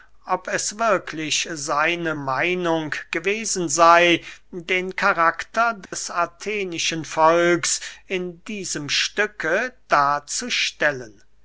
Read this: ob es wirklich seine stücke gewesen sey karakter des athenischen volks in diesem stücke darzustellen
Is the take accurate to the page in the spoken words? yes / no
no